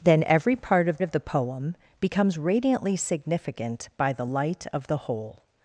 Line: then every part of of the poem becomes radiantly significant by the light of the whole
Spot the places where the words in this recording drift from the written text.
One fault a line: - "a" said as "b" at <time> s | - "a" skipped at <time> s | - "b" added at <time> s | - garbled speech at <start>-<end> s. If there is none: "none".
none